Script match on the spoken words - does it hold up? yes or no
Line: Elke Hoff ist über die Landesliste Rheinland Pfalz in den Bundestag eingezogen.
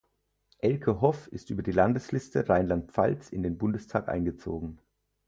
yes